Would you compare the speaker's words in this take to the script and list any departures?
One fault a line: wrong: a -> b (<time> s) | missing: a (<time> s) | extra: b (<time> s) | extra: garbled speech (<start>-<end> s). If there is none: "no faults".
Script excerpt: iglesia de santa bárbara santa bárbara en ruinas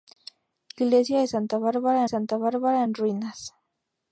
no faults